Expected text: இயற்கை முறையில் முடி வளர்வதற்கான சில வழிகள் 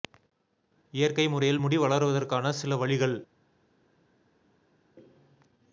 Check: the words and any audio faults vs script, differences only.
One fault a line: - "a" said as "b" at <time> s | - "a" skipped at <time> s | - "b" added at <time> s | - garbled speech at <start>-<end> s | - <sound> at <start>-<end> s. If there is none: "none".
none